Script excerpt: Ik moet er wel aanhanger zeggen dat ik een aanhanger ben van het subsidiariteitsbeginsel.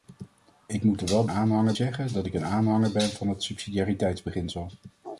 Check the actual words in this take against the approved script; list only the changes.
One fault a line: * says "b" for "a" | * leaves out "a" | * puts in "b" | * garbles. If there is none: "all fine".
all fine